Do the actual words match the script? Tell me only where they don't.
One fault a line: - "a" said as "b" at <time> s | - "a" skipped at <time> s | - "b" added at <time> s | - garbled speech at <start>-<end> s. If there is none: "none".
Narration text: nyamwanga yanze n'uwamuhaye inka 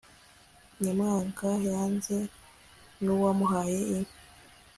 none